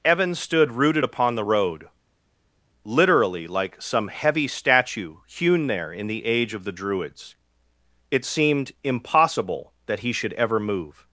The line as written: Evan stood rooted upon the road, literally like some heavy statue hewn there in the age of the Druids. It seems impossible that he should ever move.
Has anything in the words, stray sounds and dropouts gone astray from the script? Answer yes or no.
yes